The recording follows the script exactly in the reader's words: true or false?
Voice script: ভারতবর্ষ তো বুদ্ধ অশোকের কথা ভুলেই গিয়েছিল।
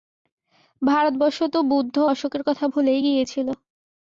true